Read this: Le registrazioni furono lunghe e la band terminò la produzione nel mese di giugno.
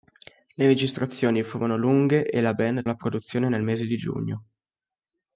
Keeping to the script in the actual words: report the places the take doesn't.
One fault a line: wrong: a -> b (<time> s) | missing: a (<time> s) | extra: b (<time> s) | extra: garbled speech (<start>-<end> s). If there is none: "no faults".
missing: terminò (2.9 s)